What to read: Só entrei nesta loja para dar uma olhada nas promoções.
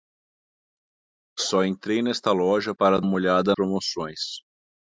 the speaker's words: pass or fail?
fail